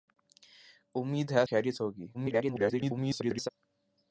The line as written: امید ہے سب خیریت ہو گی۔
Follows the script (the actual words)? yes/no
no